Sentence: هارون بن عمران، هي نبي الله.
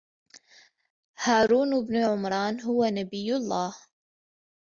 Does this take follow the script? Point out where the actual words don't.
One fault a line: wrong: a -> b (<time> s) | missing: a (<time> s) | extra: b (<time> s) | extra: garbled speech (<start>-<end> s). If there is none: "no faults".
wrong: هي -> هو (2.6 s)